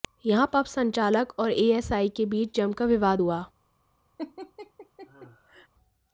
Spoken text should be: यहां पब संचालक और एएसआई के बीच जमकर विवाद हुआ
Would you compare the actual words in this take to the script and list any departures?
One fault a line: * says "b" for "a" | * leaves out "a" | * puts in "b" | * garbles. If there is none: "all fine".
all fine